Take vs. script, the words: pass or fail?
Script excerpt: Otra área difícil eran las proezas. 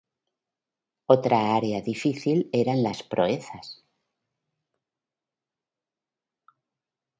pass